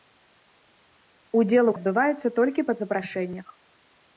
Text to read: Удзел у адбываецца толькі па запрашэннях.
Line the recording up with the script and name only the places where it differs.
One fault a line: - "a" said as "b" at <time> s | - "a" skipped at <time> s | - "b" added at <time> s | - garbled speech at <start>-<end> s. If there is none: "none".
none